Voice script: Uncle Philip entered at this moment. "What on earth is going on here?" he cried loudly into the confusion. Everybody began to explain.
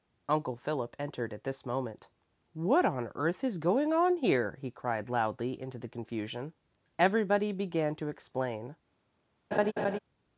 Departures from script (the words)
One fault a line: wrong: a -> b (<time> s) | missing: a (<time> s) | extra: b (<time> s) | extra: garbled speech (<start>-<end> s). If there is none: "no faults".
no faults